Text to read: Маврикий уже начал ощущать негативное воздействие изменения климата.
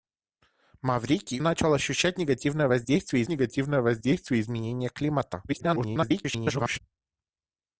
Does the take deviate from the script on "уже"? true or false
true